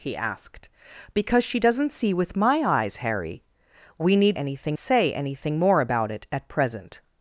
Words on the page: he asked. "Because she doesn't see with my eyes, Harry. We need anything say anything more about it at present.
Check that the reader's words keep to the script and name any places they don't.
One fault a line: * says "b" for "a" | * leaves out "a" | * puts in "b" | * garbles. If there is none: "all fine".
all fine